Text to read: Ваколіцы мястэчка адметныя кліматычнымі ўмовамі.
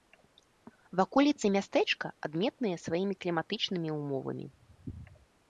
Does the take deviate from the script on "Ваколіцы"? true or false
false